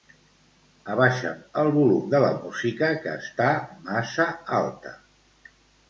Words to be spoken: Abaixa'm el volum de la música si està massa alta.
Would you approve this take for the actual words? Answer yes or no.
no